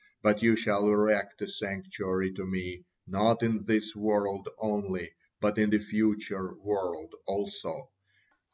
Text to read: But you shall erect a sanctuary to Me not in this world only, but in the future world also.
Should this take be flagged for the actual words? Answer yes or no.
no